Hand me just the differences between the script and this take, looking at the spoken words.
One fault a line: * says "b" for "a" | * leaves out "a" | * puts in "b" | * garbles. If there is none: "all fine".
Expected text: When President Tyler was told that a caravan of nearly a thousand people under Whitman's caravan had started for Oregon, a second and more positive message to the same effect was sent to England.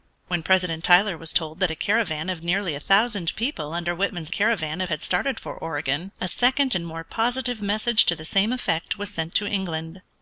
all fine